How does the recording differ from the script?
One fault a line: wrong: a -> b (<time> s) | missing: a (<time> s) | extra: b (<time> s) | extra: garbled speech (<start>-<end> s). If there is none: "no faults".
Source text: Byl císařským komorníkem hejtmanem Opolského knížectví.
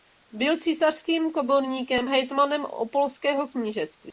no faults